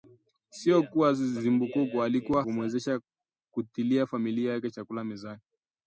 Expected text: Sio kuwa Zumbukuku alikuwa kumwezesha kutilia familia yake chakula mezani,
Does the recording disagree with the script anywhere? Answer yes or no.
no